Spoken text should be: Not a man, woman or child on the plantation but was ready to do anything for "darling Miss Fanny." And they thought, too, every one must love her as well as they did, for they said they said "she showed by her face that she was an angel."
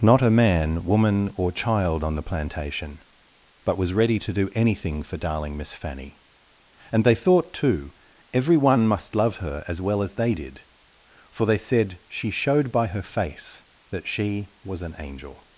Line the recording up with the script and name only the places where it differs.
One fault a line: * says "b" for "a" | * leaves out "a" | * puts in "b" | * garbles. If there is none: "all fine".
* leaves out "they said"